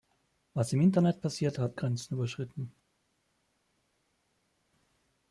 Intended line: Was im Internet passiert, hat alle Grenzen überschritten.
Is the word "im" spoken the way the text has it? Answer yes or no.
yes